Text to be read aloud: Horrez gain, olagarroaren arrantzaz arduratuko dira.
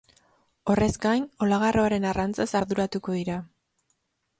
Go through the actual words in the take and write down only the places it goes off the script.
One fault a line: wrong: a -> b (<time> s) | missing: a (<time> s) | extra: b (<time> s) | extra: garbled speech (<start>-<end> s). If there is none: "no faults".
no faults